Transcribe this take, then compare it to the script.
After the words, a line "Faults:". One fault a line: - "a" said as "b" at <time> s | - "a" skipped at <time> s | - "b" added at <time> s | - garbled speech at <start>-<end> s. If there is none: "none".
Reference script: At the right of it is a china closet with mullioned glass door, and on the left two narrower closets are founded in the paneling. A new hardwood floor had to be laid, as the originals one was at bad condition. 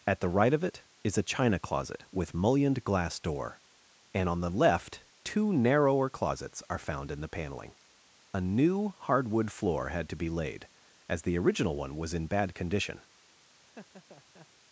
At the right of it is a china closet with mullioned glass door, and on the left two narrower closets are found in the paneling. A new hardwood floor had to be laid, as the original one was in bad condition.
Faults:
- "founded" said as "found" at 6.8 s
- "originals" said as "original" at 11.4 s
- "at" said as "in" at 12.1 s